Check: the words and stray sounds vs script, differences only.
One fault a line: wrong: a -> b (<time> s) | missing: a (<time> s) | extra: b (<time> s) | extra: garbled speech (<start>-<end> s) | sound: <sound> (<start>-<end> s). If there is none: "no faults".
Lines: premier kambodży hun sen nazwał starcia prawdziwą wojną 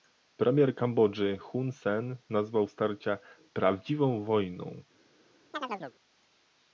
sound: chirp (5.5-6.0 s)